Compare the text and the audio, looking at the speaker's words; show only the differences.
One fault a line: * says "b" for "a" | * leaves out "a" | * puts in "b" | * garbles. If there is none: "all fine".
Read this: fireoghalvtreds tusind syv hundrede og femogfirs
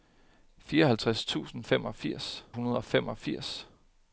* says "femogfirs" for "syv"